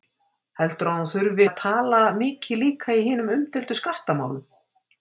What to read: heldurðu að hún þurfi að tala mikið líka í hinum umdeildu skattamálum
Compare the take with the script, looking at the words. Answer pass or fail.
pass